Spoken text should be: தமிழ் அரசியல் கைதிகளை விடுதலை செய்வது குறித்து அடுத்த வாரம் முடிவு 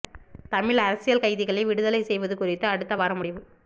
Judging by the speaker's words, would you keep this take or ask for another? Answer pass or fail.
pass